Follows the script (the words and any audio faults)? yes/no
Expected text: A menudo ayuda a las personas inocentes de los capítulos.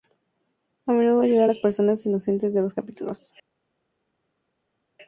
yes